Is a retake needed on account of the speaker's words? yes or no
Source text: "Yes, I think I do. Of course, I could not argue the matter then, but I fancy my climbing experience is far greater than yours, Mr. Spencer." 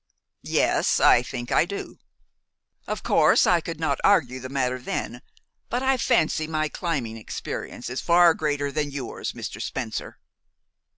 no